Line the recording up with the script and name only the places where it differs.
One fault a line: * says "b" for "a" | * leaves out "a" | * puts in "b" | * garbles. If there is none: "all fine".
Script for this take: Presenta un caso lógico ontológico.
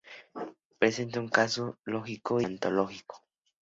all fine